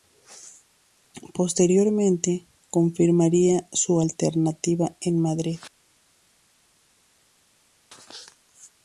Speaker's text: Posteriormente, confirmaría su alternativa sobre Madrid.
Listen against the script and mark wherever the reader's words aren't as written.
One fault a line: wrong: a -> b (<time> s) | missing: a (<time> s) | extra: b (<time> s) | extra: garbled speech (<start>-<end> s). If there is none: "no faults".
wrong: sobre -> en (5.0 s)